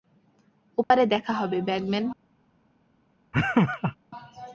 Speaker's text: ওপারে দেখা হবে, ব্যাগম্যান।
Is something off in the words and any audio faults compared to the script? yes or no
yes